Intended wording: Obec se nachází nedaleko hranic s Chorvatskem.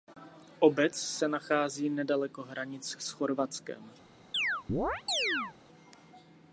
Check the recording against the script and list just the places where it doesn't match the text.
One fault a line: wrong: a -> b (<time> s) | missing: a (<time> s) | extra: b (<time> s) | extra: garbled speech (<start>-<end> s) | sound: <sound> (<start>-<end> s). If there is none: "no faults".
sound: chirp (4.3-5.6 s)